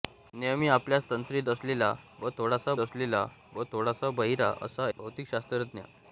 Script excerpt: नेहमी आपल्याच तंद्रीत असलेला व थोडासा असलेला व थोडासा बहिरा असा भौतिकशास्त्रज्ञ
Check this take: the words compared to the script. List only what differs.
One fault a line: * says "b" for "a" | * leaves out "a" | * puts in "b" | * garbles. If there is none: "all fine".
all fine